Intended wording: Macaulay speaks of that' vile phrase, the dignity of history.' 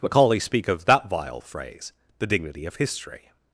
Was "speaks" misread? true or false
true